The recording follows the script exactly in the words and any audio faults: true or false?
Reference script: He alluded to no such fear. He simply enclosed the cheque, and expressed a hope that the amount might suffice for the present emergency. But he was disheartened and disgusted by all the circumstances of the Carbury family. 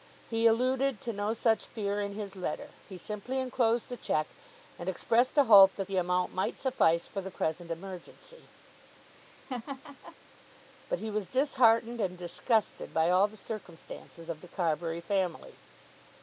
false